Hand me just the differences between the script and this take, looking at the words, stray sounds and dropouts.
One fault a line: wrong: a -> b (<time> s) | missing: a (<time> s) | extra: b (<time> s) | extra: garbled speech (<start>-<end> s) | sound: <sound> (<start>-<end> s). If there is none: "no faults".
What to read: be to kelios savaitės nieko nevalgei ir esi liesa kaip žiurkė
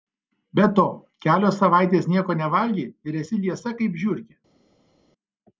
no faults